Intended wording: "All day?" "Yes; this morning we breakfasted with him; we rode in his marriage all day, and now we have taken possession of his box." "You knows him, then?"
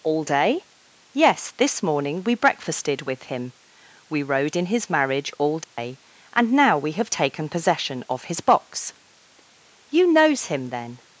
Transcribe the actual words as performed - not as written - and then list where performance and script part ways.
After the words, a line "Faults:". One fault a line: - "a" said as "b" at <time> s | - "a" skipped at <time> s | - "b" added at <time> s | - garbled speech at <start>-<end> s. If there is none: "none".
"All day?" "Yes; this morning we breakfasted with him; we rode in his marriage all day, and now we have taken possession of his box." "You knows him, then?"
Faults:
none